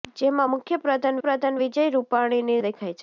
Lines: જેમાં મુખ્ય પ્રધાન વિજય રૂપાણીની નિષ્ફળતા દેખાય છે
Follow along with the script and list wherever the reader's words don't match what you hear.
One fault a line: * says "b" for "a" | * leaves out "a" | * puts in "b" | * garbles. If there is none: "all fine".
* puts in "પ્રધાન"
* leaves out "નિષ્ફળતા"